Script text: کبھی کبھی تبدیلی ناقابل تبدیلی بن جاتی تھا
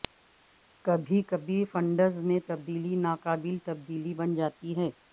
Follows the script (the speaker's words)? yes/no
no